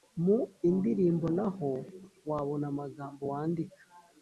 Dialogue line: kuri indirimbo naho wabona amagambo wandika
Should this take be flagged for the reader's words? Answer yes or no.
yes